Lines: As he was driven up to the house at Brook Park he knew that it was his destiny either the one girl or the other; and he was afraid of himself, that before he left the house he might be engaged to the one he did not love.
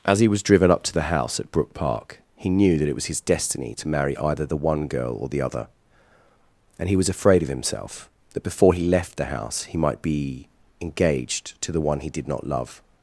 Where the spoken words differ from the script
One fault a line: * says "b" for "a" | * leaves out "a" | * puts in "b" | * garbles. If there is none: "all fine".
* puts in "to marry"